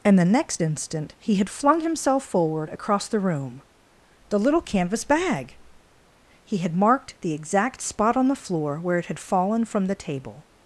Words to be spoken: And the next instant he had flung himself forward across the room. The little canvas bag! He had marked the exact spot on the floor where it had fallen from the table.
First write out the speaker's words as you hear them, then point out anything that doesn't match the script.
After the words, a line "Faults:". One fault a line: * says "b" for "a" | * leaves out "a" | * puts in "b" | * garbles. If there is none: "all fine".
And the next instant he had flung himself forward across the room. The little canvas bag! He had marked the exact spot on the floor where it had fallen from the table.
Faults:
all fine